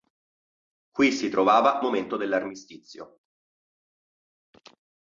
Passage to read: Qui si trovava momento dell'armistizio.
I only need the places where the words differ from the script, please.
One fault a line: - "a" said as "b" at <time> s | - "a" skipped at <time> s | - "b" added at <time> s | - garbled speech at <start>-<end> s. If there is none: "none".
none